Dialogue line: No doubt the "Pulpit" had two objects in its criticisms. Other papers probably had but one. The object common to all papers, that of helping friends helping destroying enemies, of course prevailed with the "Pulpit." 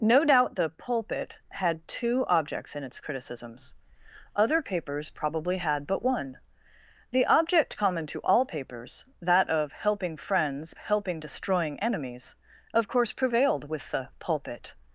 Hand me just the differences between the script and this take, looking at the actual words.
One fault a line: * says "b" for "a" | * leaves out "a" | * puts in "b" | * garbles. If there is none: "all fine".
all fine